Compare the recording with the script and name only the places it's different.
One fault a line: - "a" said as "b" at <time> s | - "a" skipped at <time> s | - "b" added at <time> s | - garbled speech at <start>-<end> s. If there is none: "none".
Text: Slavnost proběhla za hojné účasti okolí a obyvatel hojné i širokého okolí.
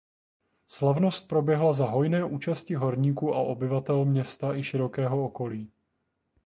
- "okolí" said as "horníků" at 2.7 s
- "hojné" said as "města" at 4.1 s